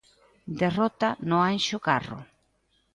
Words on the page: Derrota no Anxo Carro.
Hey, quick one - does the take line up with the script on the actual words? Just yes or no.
yes